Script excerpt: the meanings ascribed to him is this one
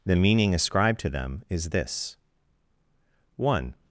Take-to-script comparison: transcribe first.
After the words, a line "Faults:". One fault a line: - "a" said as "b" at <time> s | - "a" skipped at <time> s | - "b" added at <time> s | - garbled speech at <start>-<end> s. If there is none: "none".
the meaning ascribed to them is this one
Faults:
- "meanings" said as "meaning" at 0.1 s
- "him" said as "them" at 1.1 s